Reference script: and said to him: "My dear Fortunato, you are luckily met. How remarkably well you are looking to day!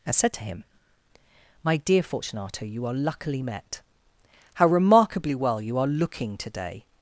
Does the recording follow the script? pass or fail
pass